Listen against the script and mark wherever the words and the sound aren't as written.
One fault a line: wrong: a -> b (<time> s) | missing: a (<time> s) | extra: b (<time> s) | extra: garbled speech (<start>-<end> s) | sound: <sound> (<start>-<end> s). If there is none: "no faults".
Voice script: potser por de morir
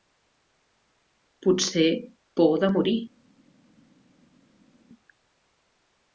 no faults